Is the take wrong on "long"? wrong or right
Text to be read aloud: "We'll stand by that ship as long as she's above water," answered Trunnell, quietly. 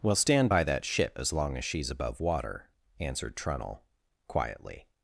right